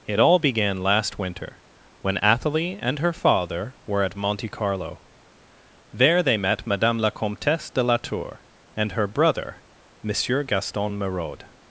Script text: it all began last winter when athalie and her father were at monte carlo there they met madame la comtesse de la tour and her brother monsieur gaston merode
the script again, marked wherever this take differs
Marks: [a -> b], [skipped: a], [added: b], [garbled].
it all began last winter when athalie and her father were at monte carlo there they met madame la comtesse de la tour and her brother monsieur gaston merode